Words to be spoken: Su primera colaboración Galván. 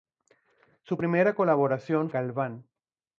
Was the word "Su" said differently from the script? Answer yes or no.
no